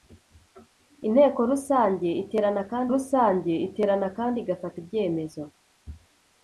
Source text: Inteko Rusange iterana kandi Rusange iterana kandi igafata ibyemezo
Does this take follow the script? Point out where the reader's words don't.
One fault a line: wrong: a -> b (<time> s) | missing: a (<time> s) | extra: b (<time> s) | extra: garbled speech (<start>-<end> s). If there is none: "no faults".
no faults